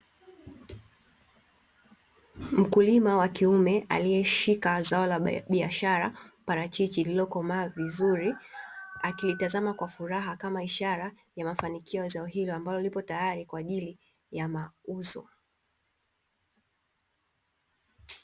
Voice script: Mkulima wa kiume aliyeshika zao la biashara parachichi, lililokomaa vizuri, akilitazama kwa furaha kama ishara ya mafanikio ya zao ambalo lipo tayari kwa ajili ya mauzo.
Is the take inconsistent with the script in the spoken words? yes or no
yes